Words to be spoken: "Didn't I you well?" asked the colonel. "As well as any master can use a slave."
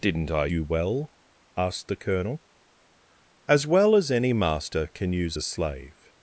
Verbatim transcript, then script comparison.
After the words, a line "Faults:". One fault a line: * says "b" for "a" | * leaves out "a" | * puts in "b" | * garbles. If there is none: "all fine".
"Didn't I you well?" asked the colonel. "As well as any master can use a slave."
Faults:
all fine